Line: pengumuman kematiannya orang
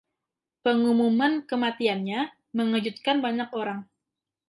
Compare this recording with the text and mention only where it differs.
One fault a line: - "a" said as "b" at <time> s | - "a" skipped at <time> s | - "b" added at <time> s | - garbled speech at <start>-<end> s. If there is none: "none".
- "mengejutkan banyak" added at 2.6 s